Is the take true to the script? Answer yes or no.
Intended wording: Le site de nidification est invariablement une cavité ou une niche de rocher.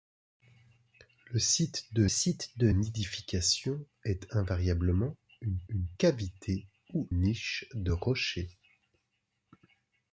no